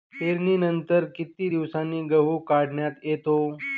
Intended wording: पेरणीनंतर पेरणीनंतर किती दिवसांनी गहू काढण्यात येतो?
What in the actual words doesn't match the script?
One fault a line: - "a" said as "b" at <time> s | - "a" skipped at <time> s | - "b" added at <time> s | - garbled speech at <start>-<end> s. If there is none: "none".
- "पेरणीनंतर" skipped at 1.1 s